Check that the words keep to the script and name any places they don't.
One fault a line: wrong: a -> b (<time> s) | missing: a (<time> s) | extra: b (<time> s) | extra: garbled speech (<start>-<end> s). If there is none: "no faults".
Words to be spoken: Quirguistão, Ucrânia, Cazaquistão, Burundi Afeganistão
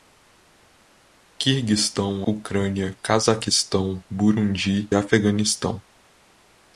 no faults